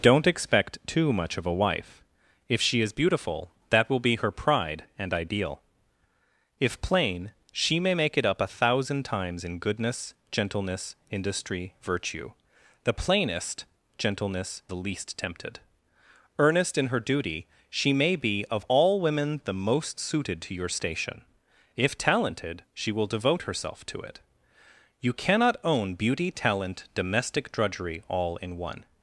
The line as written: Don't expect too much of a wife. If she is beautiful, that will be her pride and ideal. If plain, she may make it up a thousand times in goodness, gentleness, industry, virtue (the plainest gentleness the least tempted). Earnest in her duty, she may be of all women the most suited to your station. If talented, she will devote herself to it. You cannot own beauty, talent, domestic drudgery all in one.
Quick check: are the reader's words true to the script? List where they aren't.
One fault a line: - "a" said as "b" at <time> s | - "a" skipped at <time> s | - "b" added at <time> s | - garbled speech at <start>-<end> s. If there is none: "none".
none